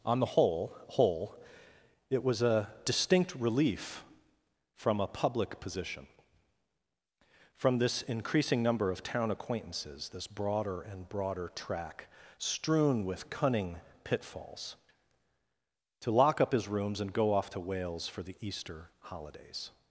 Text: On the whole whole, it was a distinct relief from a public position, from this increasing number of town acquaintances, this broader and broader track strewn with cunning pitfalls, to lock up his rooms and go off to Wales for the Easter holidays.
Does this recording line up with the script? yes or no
yes